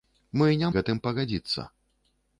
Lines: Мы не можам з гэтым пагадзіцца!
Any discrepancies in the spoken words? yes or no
yes